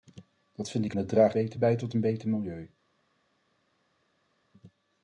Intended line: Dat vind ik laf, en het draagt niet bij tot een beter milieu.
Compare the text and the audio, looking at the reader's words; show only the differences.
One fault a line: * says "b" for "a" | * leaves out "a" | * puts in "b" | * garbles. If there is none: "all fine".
* leaves out "laf en"
* says "beter" for "niet"